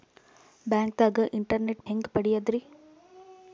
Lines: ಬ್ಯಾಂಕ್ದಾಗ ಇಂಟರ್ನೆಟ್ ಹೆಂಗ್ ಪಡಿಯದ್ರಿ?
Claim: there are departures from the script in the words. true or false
false